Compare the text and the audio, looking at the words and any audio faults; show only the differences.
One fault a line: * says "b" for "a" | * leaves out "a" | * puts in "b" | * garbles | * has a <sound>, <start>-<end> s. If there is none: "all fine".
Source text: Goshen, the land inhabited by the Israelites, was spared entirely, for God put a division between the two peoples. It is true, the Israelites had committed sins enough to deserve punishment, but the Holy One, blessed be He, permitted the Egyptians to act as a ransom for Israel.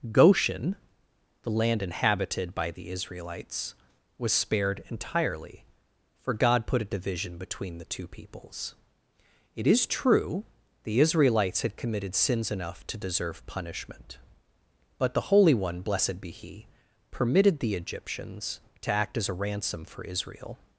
all fine